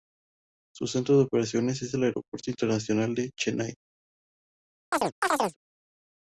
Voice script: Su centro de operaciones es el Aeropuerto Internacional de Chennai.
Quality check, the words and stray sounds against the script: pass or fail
fail